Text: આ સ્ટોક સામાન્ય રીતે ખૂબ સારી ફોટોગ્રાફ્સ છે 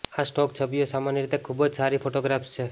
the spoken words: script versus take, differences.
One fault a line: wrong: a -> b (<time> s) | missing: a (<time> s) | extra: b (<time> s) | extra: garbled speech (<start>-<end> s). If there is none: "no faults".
extra: છબીઓ (0.6 s)
extra: જ (1.6 s)